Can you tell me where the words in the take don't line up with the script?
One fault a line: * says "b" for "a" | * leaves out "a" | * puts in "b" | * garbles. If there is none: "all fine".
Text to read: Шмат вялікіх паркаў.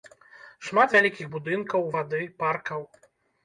* puts in "будынкаў вады"